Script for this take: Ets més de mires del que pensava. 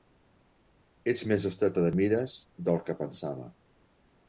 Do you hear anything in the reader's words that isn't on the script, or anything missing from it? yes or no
yes